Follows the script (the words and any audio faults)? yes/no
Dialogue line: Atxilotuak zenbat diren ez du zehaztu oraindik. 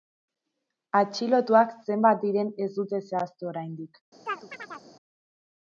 no